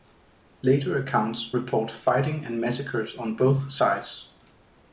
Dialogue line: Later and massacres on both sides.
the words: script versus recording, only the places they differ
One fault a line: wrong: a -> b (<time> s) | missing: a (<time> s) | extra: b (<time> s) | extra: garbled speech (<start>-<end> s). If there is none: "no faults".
extra: accounts report fighting (1.0 s)